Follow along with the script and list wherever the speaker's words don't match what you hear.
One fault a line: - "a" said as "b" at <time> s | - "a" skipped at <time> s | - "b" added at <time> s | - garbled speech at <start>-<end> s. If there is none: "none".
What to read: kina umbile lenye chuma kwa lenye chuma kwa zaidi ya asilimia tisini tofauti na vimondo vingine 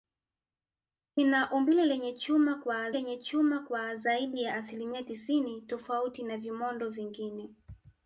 none